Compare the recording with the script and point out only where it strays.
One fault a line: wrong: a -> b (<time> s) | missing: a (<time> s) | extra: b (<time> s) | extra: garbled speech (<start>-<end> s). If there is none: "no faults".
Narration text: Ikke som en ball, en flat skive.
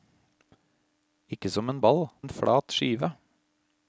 no faults